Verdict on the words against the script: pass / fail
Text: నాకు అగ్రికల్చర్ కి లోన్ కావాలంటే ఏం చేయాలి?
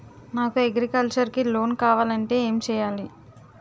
pass